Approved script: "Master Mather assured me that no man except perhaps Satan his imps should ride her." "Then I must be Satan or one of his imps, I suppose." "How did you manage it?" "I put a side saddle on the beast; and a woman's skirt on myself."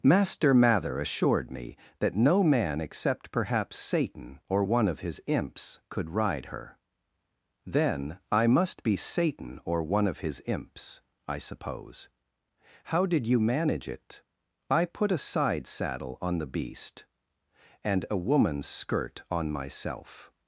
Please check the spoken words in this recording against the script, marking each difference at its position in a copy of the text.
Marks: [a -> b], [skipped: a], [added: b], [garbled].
"Master Mather assured me that no man except perhaps Satan [added: or one of] his imps [should -> could] ride her." "Then I must be Satan or one of his imps, I suppose." "How did you manage it?" "I put a side saddle on the beast; and a woman's skirt on myself."